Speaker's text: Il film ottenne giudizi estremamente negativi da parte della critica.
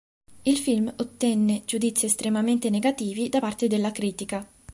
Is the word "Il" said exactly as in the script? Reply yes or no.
yes